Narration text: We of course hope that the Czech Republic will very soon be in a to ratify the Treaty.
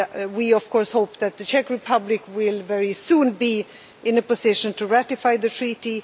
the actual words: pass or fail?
fail